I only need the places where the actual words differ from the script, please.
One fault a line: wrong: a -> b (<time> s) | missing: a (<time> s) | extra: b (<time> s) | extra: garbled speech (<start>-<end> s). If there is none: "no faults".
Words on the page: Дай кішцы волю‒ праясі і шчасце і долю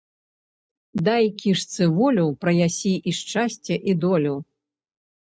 no faults